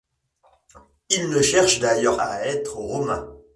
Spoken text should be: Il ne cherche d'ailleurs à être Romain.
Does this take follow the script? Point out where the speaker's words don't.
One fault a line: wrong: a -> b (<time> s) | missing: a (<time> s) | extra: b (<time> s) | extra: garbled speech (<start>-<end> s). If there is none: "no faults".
no faults